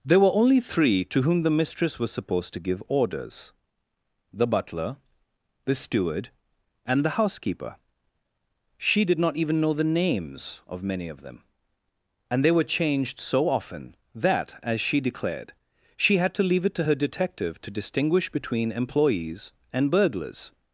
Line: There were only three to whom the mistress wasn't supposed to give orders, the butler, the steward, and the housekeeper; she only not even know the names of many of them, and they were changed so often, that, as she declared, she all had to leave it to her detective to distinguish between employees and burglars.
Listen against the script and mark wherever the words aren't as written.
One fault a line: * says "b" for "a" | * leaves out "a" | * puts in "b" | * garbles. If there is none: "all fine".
* says "was" for "wasn't"
* says "did" for "only"
* leaves out "all"